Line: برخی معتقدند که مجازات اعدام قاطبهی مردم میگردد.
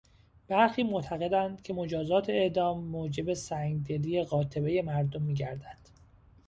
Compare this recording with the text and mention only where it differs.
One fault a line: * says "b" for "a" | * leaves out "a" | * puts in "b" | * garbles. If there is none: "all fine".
* puts in "موجب سنگدلی"